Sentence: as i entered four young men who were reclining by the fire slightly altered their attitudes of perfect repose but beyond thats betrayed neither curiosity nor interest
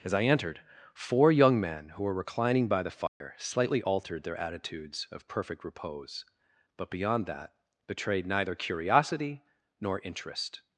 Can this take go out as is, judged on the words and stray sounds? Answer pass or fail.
fail